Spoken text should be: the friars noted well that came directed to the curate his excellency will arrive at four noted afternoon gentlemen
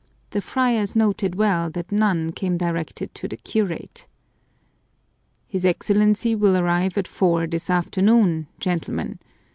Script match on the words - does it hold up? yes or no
no